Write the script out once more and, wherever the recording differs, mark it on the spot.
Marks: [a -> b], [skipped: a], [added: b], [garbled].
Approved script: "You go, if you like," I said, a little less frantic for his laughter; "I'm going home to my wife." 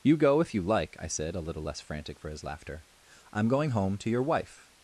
"You go, if you like," I said, a little less frantic for his laughter; "I'm going home to [my -> your] wife."